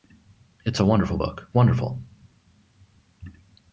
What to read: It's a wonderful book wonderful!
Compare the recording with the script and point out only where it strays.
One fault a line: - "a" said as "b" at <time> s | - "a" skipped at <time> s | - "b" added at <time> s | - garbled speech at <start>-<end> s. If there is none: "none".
none